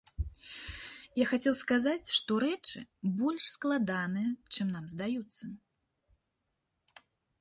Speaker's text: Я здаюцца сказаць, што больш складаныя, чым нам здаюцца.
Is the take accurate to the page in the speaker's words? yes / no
no